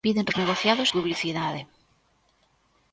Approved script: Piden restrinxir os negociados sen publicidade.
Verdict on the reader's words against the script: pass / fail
fail